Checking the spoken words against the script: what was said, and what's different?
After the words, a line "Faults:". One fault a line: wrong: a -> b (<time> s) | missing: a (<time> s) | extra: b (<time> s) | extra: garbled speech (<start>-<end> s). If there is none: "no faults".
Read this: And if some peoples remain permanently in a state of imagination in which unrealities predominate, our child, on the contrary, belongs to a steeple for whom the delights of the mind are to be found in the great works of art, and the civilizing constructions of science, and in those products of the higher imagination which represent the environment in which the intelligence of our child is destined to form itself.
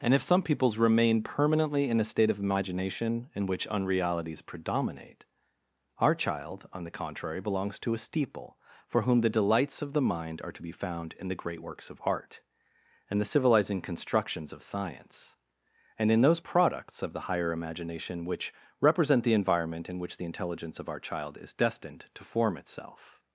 And if some peoples remain permanently in a state of imagination in which unrealities predominate, our child, on the contrary, belongs to a steeple for whom the delights of the mind are to be found in the great works of art, and the civilizing constructions of science, and in those products of the higher imagination which represent the environment in which the intelligence of our child is destined to form itself.
Faults:
no faults